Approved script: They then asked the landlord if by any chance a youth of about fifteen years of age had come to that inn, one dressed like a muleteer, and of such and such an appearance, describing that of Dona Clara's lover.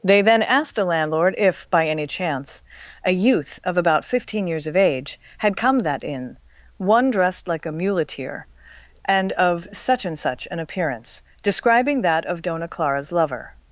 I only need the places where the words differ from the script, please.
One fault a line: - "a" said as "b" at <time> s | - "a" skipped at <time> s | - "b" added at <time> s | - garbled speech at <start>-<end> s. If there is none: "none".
- "to" skipped at 5.8 s